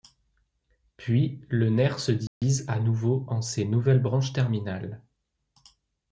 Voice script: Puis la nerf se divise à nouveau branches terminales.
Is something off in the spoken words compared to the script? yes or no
yes